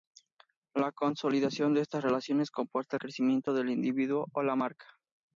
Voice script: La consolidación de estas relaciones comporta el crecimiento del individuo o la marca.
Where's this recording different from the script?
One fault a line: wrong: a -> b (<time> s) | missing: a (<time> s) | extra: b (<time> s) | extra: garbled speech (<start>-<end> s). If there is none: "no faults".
no faults